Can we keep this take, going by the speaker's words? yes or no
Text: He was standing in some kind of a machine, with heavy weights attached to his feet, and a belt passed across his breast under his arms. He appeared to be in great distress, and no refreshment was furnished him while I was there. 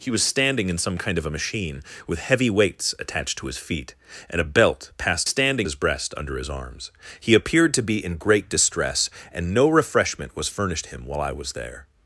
no